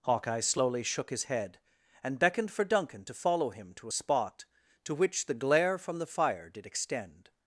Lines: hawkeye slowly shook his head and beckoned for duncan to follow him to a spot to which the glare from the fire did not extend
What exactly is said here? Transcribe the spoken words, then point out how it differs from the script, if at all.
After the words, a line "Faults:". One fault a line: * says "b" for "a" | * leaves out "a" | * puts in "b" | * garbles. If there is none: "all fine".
hawkeye slowly shook his head and beckoned for duncan to follow him to a spot to which the glare from the fire did extend
Faults:
* leaves out "not"